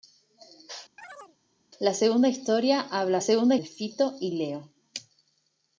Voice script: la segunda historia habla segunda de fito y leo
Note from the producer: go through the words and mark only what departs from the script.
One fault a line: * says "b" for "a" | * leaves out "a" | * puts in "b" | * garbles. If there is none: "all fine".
all fine